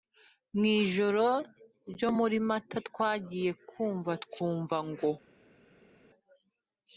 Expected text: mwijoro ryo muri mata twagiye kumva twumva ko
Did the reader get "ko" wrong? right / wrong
wrong